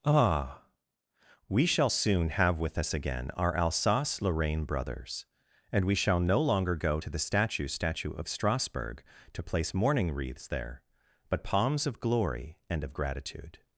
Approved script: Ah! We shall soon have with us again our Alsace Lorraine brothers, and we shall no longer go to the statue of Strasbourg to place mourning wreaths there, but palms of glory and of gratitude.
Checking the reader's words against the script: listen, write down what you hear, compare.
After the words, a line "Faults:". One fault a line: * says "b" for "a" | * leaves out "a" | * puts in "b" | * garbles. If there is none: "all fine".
Ah! We shall soon have with us again our Alsace Lorraine brothers, and we shall no longer go to the statue statue of Strasbourg to place mourning wreaths there, but palms of glory and of gratitude.
Faults:
* puts in "statue"